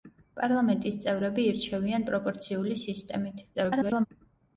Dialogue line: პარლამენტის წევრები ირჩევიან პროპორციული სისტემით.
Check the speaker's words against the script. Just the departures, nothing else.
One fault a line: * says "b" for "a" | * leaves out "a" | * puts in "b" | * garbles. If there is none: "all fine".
* garbles